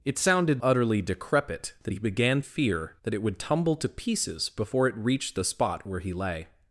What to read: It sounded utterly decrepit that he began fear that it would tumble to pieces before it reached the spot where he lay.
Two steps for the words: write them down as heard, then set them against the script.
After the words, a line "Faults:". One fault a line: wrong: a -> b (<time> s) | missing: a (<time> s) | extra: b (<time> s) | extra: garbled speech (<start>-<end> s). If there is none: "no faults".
It sounded utterly decrepit that he began fear that it would tumble to pieces before it reached the spot where he lay.
Faults:
no faults